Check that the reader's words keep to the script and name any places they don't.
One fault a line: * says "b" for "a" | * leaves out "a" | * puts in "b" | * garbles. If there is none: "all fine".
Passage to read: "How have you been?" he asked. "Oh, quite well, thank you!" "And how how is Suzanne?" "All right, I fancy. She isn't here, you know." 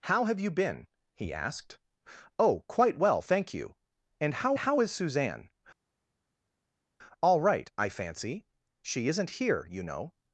all fine